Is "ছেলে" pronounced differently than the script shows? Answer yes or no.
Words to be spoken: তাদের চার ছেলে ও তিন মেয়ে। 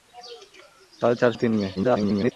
yes